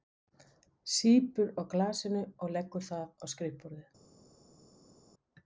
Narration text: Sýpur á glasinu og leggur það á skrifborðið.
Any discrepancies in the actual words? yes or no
no